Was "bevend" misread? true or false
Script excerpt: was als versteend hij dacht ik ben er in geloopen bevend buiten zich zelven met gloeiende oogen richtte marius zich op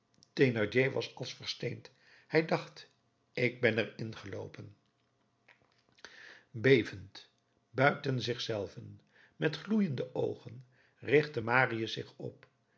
false